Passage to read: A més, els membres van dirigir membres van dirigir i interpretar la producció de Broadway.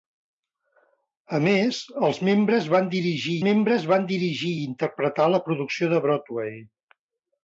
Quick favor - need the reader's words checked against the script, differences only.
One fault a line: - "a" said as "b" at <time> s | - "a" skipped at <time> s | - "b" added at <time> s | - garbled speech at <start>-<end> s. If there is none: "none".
none